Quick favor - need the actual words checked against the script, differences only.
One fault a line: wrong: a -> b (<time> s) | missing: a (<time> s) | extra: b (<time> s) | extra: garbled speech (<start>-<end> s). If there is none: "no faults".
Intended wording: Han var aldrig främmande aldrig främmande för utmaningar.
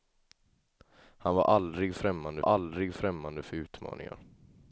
no faults